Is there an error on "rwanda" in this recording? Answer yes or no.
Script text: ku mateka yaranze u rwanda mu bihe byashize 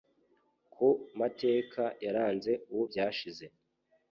yes